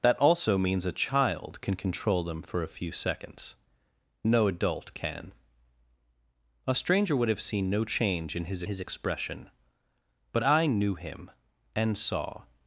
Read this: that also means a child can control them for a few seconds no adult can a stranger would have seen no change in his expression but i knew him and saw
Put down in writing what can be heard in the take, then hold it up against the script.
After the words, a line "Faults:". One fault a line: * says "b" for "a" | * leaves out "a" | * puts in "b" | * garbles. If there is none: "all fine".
that also means a child can control them for a few seconds no adult can a stranger would have seen no change in his his expression but i knew him and saw
Faults:
* puts in "his"